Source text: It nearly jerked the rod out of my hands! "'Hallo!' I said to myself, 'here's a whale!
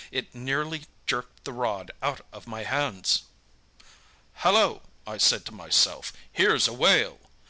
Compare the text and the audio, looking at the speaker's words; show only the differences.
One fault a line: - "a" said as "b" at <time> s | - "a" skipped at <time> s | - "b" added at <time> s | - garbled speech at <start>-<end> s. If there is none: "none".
none